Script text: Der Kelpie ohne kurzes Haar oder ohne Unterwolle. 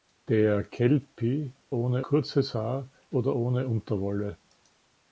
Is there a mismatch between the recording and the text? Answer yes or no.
no